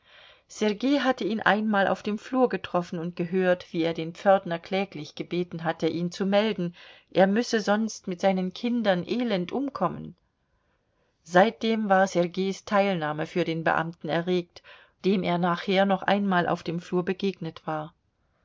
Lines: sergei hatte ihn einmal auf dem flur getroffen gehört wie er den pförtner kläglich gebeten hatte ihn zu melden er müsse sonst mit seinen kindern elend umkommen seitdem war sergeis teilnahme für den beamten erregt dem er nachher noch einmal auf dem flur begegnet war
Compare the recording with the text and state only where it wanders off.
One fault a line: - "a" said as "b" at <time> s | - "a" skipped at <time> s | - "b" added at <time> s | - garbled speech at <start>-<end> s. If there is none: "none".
- "und" added at 3.0 s